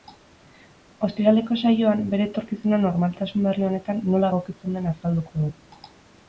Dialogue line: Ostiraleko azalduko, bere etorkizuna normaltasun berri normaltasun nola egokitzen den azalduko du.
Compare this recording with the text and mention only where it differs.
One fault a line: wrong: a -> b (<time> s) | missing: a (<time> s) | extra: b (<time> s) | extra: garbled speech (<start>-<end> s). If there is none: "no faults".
wrong: azalduko -> saioan (1.6 s)
wrong: normaltasun -> honetan (3.7 s)